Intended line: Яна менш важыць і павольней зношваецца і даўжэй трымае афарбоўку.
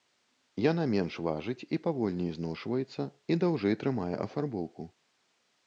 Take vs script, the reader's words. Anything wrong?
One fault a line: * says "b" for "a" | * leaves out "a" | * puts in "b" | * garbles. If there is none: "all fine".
all fine